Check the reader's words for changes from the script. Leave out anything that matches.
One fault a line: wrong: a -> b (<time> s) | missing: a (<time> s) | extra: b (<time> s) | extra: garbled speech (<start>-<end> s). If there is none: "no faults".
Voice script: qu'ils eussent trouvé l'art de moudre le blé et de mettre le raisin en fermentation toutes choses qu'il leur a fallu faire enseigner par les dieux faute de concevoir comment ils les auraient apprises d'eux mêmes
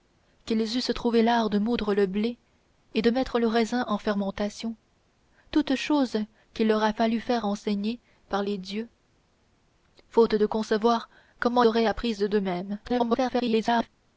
missing: ils les (11.6 s)
extra: garbled speech (12.8-13.9 s)